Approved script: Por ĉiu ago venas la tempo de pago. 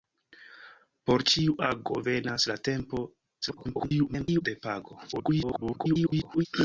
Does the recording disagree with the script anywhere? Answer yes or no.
yes